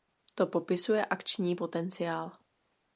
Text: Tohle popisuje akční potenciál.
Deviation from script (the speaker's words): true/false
true